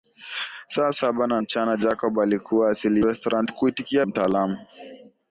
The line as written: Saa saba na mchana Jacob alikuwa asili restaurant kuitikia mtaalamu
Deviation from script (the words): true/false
false